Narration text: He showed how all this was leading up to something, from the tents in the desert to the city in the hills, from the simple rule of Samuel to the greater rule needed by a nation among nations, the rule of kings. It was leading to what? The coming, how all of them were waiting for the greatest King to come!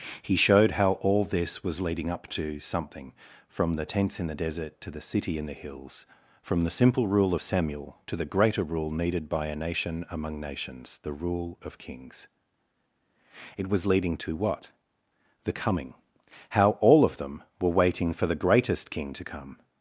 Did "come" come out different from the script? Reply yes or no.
no